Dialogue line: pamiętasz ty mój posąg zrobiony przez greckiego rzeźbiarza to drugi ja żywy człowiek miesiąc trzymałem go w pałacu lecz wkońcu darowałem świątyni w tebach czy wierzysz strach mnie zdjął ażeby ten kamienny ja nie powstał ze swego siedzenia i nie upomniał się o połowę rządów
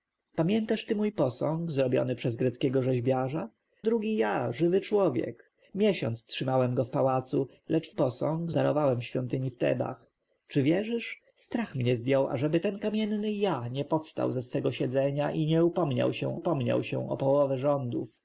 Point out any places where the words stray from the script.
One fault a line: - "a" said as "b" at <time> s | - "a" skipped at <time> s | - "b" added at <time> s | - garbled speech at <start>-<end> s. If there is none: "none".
- "to" skipped at 3.5 s
- "wkońcu" said as "posąg" at 7.9 s
- "upomniał się" added at 16.3 s